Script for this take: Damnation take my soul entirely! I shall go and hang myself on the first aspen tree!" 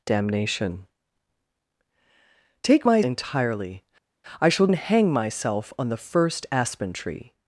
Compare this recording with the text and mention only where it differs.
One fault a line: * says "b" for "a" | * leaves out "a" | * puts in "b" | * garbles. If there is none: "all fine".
* leaves out "soul"
* leaves out "go"